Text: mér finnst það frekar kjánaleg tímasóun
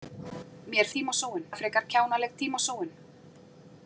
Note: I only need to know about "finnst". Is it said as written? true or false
false